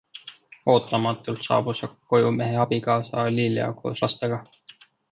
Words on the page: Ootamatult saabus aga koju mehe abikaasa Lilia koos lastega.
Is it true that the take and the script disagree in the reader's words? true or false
false